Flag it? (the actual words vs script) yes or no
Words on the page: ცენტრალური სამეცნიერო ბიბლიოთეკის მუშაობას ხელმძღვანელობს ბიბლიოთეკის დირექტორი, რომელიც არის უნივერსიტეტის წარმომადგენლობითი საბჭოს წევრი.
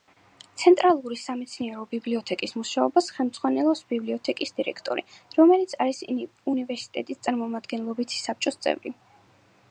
no